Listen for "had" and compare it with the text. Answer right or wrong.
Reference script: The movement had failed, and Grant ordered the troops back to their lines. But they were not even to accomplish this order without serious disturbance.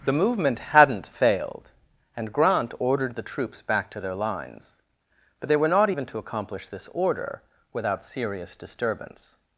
wrong